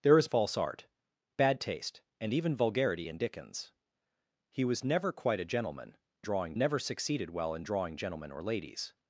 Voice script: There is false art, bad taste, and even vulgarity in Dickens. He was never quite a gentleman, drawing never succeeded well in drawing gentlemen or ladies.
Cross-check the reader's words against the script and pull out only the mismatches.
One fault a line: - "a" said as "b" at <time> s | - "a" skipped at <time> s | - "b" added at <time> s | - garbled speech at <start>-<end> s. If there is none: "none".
none